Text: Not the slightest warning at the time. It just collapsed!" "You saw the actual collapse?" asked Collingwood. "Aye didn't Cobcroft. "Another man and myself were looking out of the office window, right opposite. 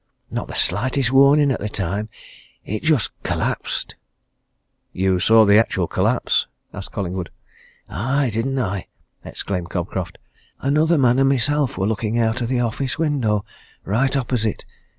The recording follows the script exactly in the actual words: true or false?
false